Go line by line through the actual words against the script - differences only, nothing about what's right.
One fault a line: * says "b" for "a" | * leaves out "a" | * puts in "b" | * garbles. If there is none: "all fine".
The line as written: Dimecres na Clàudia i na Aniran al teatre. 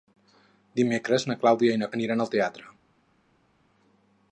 all fine